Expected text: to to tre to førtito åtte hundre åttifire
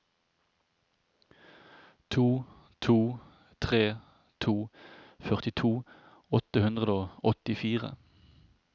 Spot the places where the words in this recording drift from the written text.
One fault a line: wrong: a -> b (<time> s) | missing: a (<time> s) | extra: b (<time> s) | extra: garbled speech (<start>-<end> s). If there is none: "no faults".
extra: og (6.9 s)